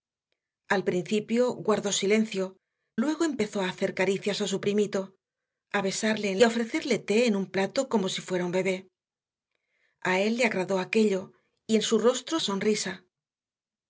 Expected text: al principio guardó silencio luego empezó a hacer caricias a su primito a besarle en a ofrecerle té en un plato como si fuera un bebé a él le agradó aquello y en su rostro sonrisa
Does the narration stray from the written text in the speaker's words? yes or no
no